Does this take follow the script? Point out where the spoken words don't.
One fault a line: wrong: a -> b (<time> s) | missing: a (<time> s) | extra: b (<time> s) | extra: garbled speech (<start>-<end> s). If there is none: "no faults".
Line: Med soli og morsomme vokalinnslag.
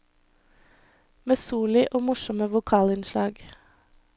no faults